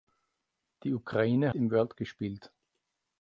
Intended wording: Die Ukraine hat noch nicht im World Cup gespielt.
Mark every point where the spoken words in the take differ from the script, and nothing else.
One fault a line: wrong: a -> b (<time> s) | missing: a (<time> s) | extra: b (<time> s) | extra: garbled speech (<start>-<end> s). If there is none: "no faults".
missing: hat noch nicht (1.5 s)
missing: Cup (2.0 s)